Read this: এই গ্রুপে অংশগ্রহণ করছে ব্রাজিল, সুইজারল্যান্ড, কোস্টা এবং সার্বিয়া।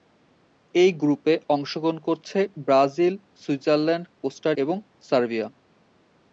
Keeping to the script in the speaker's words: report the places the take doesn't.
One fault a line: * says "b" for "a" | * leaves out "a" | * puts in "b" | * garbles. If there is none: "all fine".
all fine